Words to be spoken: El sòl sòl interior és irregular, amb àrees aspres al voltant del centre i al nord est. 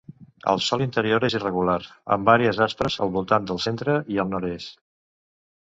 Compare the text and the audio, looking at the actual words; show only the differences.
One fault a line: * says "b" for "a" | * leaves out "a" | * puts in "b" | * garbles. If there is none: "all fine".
* leaves out "sòl"